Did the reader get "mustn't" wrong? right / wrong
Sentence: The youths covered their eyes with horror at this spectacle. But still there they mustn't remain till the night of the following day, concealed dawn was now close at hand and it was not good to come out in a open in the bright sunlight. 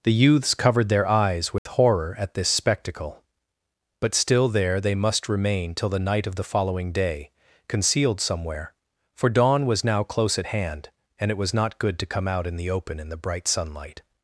wrong